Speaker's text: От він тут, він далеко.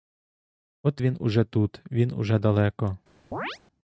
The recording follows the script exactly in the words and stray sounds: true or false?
false